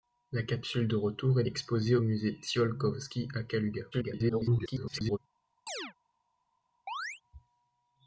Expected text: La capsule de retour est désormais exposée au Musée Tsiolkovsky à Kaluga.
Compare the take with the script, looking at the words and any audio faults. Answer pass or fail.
fail